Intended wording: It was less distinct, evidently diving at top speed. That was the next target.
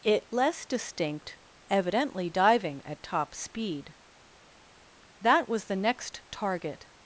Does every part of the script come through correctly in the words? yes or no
no